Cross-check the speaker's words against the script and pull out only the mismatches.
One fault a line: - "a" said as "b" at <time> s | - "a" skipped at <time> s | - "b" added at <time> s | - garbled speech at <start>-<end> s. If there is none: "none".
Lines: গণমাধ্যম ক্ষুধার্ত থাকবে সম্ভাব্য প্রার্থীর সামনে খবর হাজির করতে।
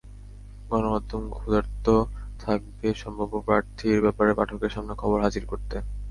- "ব্যাপারে পাঠকের" added at 4.0 s